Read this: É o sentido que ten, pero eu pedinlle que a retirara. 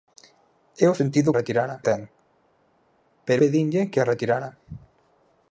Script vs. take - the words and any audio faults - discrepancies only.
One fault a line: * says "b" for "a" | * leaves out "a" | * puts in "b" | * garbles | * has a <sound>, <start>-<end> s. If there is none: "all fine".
* says "retirara" for "que"
* leaves out "eu"